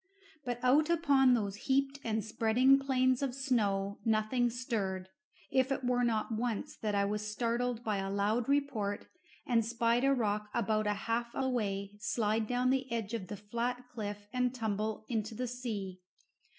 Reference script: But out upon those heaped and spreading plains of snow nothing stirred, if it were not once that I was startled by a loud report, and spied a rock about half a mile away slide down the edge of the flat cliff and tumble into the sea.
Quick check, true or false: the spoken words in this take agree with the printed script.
false